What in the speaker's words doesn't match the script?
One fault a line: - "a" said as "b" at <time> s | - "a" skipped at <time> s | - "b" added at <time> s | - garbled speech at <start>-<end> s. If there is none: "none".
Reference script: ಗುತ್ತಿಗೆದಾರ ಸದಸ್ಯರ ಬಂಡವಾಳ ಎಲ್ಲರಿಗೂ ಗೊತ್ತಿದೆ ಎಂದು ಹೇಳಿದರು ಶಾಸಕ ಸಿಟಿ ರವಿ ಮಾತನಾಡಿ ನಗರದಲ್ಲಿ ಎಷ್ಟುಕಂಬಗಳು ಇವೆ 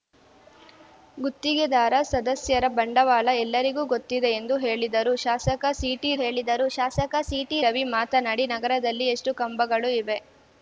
- "ಹೇಳಿದರು ಶಾಸಕ ಸಿಟಿ" added at 6.2 s